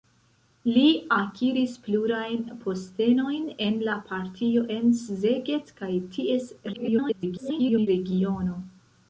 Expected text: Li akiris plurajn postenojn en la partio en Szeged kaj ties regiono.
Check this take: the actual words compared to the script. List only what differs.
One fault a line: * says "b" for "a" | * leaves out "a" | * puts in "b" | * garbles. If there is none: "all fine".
* garbles